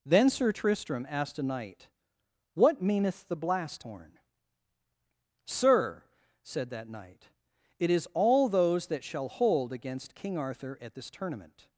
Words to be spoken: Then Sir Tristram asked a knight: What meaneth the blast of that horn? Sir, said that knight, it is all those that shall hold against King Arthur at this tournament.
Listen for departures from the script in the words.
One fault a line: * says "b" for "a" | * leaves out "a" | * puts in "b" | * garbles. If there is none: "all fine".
* leaves out "of that"